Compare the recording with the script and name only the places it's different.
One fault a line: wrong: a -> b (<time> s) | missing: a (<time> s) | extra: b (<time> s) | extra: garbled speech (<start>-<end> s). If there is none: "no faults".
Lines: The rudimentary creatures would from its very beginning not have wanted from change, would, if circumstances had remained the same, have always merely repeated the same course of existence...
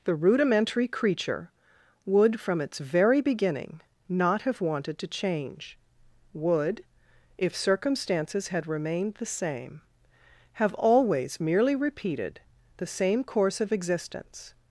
wrong: creatures -> creature (0.9 s)
wrong: from -> to (5.0 s)